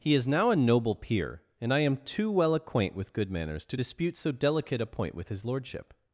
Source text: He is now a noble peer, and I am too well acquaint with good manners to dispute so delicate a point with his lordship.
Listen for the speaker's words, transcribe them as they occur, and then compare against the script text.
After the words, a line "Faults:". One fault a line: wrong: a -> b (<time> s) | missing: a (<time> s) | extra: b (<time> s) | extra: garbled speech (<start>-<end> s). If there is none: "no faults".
He is now a noble peer, and I am too well acquaint with good manners to dispute so delicate a point with his lordship.
Faults:
no faults